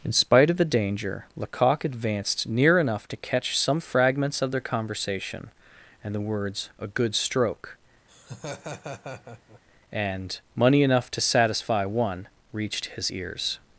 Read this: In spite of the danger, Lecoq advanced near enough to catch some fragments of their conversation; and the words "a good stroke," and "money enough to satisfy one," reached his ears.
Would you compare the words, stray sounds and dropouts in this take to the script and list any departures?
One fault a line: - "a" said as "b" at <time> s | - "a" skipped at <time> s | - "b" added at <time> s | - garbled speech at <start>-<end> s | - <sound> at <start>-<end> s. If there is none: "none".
- laugh at 8.1-9.6 s